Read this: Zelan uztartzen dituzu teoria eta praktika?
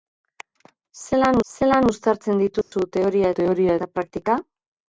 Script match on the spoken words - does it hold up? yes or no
no